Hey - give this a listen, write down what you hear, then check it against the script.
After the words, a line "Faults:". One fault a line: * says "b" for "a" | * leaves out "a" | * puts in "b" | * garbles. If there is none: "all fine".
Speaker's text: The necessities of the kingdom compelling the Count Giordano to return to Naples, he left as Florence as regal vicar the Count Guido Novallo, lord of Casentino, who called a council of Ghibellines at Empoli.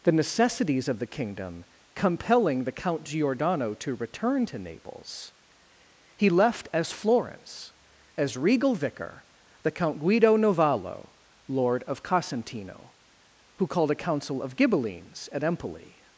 The necessities of the kingdom compelling the Count Giordano to return to Naples, he left as Florence as regal vicar the Count Guido Novallo, lord of Casentino, who called a council of Ghibellines at Empoli.
Faults:
all fine